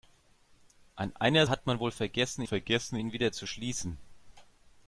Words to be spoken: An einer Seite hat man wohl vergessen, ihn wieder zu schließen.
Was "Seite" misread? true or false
true